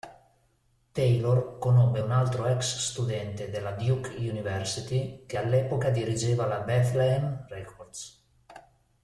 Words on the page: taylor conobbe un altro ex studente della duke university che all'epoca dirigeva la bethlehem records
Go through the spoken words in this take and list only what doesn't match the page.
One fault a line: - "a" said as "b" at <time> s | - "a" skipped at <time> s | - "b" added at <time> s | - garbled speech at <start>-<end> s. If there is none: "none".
none